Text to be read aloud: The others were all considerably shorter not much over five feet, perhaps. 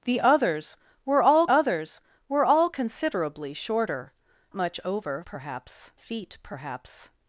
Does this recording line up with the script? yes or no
no